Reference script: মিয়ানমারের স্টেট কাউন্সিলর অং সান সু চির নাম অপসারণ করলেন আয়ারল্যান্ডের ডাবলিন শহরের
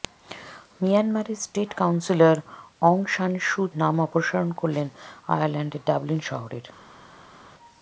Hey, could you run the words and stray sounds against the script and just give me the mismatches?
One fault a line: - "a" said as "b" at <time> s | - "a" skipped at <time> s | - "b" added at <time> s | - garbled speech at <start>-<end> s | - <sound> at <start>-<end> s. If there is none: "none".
- "চির" skipped at 3.6 s